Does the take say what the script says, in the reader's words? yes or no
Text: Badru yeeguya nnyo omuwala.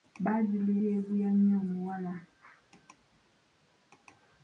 yes